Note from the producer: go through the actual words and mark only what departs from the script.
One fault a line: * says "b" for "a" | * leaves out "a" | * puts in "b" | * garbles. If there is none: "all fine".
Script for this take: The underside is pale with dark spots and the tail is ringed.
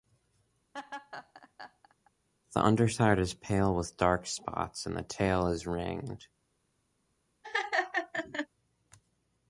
all fine